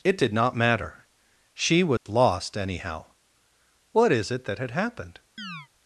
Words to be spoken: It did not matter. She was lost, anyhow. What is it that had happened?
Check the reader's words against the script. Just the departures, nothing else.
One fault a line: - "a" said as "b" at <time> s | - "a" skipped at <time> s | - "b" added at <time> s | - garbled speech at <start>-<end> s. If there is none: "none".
none